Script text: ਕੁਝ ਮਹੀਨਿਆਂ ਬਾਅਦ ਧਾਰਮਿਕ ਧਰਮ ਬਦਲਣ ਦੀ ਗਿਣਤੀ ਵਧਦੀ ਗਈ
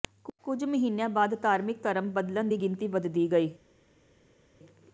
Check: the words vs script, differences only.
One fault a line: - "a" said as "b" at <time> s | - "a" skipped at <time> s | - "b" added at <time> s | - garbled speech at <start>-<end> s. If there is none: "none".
none